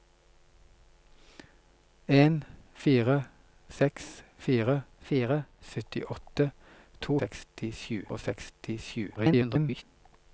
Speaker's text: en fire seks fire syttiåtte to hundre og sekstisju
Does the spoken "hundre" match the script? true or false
false